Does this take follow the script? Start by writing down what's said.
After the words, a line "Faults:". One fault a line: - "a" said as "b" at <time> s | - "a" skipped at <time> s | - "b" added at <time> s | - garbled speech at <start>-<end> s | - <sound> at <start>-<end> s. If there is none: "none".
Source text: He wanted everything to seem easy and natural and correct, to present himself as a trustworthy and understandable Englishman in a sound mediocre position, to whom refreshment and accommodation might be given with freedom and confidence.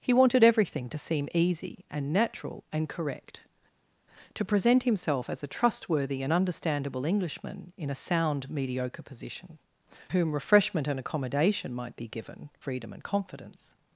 He wanted everything to seem easy and natural and correct, to present himself as a trustworthy and understandable Englishman in a sound mediocre position, whom refreshment and accommodation might be given freedom and confidence.
Faults:
- "to" skipped at 9.6 s
- "with" skipped at 12.5 s